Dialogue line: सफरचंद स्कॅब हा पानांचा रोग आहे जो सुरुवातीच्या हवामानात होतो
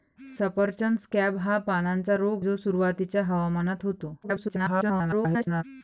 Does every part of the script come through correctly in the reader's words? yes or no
no